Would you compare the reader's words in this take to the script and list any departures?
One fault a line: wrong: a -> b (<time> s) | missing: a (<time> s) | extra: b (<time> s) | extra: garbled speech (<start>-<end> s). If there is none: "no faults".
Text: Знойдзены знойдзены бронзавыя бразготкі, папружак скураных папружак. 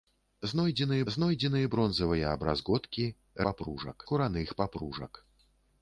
no faults